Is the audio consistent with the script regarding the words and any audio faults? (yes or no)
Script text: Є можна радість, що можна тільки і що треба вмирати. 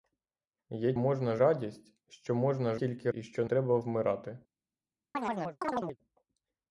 no